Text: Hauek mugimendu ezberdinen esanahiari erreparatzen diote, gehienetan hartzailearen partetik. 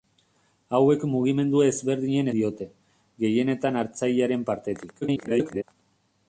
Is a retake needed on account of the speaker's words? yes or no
yes